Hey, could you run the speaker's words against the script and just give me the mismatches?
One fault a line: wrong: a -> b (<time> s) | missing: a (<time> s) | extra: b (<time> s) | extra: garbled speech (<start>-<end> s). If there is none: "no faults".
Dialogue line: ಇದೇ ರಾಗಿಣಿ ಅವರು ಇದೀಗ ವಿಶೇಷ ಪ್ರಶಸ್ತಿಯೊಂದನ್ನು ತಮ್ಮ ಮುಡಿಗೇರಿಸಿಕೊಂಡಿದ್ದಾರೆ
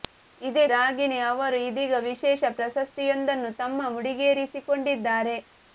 no faults